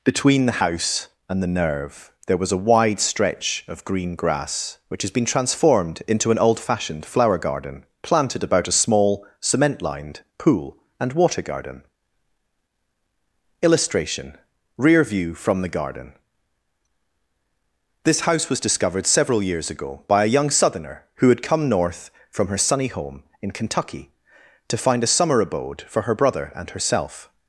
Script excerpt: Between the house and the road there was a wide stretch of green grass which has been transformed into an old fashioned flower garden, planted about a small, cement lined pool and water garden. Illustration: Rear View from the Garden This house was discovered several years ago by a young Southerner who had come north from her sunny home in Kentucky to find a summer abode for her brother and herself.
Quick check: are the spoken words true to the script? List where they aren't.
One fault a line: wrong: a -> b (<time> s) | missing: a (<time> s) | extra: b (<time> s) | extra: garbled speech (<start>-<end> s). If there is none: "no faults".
wrong: road -> nerve (1.6 s)